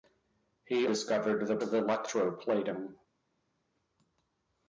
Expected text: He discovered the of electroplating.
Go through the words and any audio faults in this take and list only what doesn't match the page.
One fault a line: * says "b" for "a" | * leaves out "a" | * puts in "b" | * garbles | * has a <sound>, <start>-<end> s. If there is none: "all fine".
all fine